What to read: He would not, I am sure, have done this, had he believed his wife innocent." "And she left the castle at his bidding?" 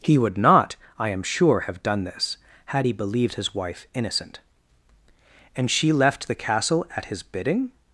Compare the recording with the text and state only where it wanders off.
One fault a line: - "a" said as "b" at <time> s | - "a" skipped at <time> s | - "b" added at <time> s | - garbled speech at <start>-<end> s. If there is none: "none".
none